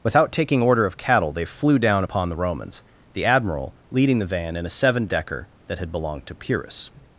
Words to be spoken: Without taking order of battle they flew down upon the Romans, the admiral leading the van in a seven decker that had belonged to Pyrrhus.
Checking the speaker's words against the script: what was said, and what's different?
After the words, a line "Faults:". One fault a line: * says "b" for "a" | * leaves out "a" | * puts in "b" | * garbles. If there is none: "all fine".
Without taking order of cattle they flew down upon the Romans, the admiral leading the van in a seven decker that had belonged to Pyrrhus.
Faults:
* says "cattle" for "battle"